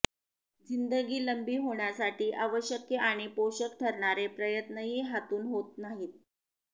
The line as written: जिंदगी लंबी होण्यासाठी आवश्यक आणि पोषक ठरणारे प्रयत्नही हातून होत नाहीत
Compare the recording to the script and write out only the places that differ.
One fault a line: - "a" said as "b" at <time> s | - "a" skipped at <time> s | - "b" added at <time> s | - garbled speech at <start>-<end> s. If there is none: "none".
none